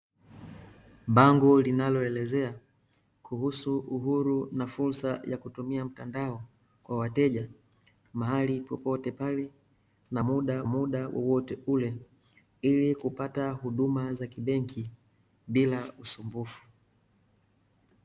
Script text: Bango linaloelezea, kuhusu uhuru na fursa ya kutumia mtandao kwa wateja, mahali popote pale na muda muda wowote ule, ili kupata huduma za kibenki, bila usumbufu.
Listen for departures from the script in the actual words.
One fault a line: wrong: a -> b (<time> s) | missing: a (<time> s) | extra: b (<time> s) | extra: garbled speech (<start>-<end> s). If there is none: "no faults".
no faults